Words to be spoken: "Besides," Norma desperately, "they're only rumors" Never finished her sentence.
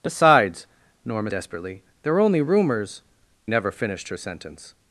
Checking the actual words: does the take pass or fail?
pass